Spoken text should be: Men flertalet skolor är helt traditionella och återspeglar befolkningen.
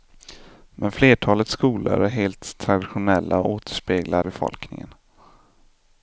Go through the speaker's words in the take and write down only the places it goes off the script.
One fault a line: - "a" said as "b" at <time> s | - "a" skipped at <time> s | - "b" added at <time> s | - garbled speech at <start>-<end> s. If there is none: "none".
none